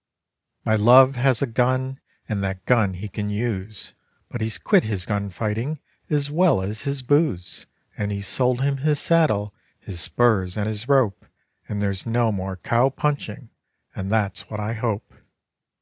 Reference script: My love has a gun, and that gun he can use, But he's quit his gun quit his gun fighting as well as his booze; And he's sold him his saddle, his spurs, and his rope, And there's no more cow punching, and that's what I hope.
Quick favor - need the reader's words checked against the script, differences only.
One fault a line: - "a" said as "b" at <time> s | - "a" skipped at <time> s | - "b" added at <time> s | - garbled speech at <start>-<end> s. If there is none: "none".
- "quit his gun" skipped at 5.3 s